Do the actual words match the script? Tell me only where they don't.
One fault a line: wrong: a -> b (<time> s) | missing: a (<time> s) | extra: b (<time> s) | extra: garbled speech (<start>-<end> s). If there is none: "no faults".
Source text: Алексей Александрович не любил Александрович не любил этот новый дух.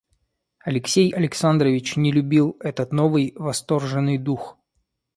missing: Александрович не любил (2.6 s)
extra: восторженный (3.3 s)